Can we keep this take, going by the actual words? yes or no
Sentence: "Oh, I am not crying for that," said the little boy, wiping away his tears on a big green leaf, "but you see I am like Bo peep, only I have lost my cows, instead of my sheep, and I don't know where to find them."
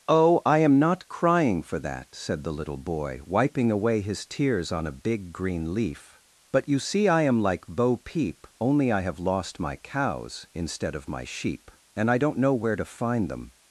yes